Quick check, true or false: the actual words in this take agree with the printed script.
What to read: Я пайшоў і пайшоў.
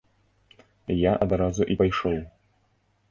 false